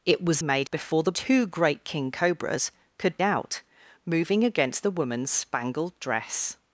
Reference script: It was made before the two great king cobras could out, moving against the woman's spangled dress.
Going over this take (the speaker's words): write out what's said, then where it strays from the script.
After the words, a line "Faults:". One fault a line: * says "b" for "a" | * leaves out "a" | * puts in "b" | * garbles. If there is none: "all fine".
It was made before the two great king cobras could out, moving against the woman's spangled dress.
Faults:
all fine